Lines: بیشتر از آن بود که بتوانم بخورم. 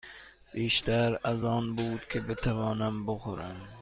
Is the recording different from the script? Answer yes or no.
no